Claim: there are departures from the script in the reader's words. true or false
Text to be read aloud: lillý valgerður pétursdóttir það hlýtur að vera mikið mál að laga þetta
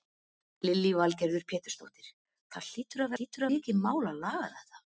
true